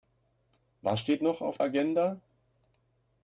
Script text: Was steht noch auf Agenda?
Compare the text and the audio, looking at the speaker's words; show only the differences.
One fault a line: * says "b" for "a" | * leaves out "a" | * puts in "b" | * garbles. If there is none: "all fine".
all fine